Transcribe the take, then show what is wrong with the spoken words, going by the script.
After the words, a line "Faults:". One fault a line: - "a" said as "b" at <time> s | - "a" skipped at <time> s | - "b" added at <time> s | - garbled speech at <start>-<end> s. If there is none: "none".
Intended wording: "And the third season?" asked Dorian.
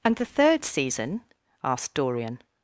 "And the third season?" asked Dorian.
Faults:
none